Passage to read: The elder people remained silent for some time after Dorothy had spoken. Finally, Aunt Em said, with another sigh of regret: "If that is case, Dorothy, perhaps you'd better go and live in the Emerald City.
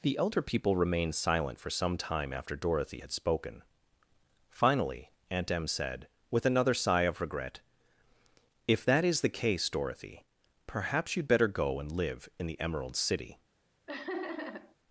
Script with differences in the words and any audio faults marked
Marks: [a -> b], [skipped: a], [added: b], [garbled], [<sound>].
The elder people remained silent for some time after Dorothy had spoken. Finally, Aunt Em said, with another sigh of regret: "If that is [added: the] case, Dorothy, perhaps you'd better go and live in the Emerald City. [laugh]